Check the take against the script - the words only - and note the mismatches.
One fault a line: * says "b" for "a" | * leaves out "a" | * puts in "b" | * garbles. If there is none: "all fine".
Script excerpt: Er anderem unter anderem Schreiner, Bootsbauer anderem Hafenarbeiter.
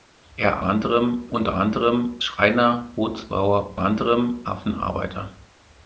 all fine